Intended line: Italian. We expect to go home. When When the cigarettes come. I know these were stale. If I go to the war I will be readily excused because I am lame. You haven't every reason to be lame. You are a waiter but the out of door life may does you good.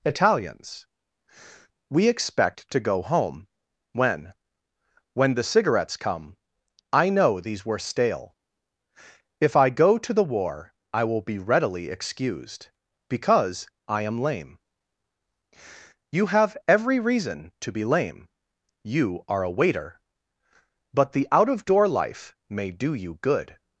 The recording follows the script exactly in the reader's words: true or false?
false